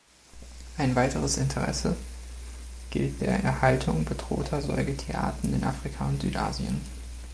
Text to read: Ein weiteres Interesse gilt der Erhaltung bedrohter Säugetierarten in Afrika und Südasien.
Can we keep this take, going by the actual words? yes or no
yes